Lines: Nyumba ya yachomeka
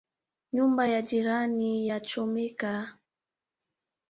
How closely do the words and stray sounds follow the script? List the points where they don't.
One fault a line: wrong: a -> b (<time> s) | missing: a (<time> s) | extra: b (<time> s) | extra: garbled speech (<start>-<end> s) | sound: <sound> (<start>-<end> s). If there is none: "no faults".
extra: jirani (1.0 s)